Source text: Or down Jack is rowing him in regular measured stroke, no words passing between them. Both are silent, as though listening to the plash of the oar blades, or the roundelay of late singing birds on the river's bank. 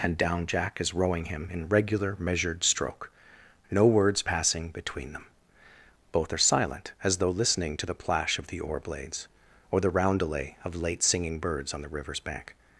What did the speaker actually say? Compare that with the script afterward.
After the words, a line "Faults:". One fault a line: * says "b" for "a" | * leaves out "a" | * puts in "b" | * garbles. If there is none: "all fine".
And down Jack is rowing him in regular measured stroke, no words passing between them. Both are silent, as though listening to the plash of the oar blades, or the roundelay of late singing birds on the river's bank.
Faults:
* says "And" for "Or"